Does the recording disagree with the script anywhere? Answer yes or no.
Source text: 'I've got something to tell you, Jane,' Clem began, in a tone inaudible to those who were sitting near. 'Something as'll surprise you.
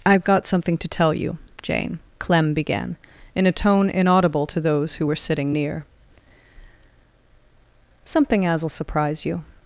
no